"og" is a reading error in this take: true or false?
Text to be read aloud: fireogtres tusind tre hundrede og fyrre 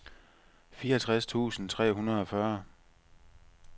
false